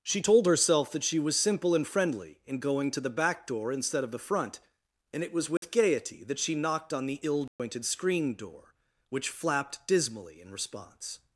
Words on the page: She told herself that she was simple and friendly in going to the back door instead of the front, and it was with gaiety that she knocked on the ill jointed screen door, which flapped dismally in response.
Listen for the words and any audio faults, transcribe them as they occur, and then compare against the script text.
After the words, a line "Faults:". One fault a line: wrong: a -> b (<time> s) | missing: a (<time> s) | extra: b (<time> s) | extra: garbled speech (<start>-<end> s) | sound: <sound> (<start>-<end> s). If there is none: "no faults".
She told herself that she was simple and friendly in going to the back door instead of the front, and it was with gaiety that she knocked on the ill jointed screen door, which flapped dismally in response.
Faults:
sound: dropout (5.6-5.6 s)
sound: dropout (7.5-7.6 s)